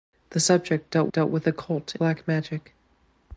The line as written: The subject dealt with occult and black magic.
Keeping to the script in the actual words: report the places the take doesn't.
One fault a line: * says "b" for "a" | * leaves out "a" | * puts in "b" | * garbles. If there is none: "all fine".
* puts in "dealt"
* leaves out "and"